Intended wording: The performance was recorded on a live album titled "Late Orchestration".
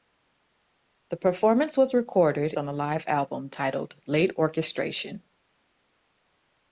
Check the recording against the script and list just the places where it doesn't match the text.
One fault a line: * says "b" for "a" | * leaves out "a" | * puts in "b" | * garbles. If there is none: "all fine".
all fine